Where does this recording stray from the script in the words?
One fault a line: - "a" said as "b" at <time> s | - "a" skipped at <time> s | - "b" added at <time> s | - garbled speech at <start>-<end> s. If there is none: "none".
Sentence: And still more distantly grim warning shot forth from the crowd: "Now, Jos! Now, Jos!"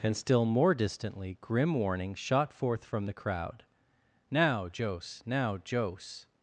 none